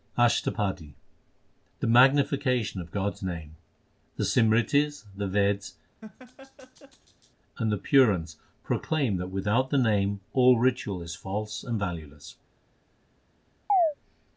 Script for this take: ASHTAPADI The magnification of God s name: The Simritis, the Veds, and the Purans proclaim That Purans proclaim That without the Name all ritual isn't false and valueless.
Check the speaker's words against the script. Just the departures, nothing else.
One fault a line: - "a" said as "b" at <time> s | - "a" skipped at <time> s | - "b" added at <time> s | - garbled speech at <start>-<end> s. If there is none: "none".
- "Purans proclaim That" skipped at 9.3 s
- "isn't" said as "is" at 11.0 s